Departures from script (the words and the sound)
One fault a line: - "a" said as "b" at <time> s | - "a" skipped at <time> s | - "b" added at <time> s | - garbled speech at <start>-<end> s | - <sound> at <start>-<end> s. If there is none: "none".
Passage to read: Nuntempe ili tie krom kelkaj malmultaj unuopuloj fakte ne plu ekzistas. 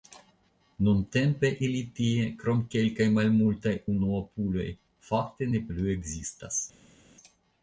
none